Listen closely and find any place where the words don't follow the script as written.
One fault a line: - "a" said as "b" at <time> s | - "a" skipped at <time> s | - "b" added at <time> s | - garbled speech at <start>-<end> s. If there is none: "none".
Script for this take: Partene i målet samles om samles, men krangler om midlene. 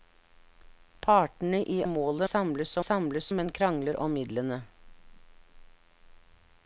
none